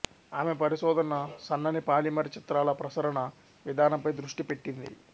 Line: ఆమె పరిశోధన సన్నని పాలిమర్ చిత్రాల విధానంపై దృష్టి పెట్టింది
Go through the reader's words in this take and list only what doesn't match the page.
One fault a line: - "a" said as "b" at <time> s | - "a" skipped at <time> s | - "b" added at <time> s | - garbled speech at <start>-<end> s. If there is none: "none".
- "ప్రసరణ" added at 2.8 s